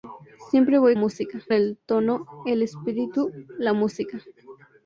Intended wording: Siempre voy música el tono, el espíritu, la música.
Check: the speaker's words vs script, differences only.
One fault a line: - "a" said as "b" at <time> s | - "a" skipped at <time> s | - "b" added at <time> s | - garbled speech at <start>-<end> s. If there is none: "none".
none